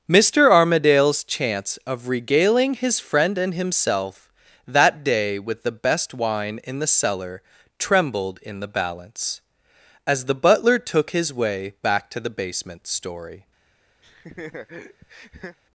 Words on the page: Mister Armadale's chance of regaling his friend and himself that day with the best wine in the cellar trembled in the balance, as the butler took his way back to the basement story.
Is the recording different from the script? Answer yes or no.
no